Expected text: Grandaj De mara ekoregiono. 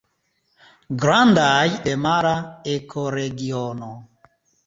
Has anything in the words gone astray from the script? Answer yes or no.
no